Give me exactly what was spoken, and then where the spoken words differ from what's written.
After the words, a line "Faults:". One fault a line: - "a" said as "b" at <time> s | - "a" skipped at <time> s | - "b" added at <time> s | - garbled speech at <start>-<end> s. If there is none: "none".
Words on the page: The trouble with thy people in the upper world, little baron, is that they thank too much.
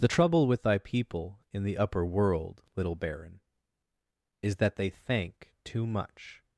The trouble with thy people in the upper world, little baron, is that they thank too much.
Faults:
none